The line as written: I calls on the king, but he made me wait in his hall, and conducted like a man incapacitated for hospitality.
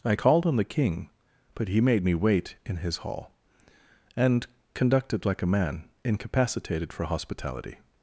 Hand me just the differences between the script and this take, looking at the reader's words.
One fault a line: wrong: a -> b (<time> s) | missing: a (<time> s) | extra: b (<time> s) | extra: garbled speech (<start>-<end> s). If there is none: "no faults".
wrong: calls -> called (0.1 s)